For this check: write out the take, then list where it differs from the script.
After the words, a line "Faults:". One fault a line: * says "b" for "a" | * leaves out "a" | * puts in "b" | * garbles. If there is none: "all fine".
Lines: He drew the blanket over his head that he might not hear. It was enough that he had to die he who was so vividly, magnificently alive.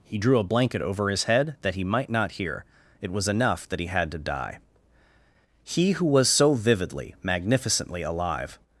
He drew a blanket over his head that he might not hear. It was enough that he had to die he who was so vividly, magnificently alive.
Faults:
* says "a" for "the"